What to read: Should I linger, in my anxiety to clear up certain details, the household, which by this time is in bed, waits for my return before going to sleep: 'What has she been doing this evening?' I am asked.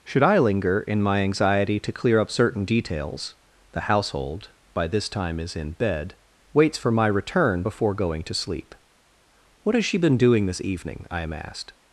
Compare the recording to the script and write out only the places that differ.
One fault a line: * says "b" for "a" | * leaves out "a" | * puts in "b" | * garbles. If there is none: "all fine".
* leaves out "which"